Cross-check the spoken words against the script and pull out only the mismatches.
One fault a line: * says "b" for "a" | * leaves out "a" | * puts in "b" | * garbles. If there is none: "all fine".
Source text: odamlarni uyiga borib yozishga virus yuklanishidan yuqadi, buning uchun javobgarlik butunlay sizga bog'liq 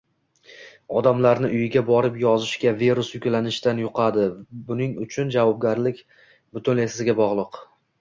all fine